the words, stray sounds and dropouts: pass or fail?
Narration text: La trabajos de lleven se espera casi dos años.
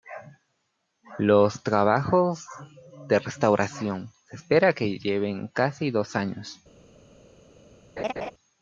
fail